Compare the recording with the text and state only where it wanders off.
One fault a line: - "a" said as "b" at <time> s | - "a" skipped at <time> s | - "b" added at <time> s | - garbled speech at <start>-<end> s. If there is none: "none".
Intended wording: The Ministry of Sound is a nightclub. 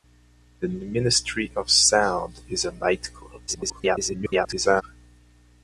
- garbled speech at 3.5-4.8 s